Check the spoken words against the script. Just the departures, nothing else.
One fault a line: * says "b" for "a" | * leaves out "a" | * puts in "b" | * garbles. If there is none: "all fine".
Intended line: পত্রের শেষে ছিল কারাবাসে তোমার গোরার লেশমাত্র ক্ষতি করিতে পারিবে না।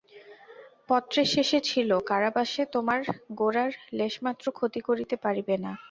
all fine